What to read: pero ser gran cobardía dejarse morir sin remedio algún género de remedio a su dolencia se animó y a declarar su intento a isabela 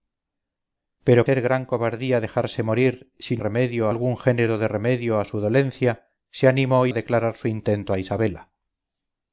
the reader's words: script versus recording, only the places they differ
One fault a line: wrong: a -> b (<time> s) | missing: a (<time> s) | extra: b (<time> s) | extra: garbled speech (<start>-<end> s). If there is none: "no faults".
no faults